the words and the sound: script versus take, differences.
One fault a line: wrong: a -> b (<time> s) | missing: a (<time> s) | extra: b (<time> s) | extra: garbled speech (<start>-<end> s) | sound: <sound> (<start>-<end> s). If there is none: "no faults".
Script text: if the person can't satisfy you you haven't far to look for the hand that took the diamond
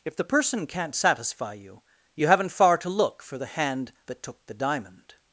no faults